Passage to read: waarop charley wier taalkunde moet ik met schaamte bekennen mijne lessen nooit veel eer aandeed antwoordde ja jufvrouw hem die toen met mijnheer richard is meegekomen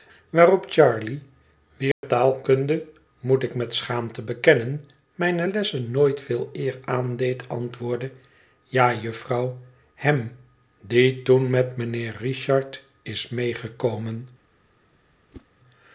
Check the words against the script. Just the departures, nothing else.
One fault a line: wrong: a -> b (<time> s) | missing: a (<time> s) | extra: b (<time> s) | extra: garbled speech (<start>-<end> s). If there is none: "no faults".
no faults